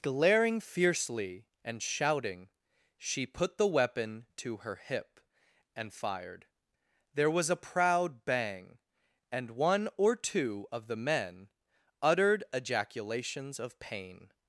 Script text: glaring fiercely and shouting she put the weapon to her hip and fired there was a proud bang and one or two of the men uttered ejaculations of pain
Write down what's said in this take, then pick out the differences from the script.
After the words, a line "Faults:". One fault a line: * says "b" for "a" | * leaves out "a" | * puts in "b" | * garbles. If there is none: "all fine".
glaring fiercely and shouting she put the weapon to her hip and fired there was a proud bang and one or two of the men uttered ejaculations of pain
Faults:
all fine